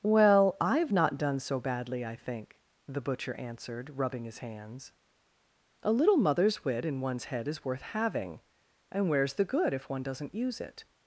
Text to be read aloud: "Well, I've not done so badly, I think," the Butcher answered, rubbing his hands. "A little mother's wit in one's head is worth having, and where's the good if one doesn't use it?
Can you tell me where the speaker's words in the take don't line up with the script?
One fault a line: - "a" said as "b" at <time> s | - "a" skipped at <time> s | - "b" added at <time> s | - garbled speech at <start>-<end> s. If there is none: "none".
none